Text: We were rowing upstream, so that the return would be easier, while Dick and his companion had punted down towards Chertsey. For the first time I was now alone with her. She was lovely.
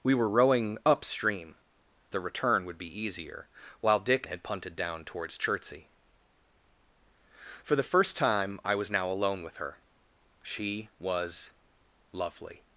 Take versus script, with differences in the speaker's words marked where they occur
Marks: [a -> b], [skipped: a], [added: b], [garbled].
We were rowing upstream, [skipped: so that] the return would be easier, while Dick [skipped: and his companion] had punted down towards Chertsey. For the first time I was now alone with her. She was lovely.